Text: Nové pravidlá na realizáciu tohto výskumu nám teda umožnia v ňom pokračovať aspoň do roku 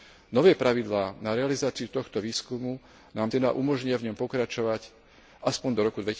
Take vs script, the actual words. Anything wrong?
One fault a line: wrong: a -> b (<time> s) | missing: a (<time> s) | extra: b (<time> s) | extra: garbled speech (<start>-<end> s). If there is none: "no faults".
no faults